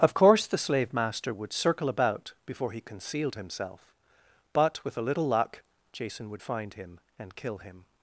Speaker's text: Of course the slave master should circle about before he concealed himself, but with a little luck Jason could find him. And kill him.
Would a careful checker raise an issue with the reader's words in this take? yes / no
yes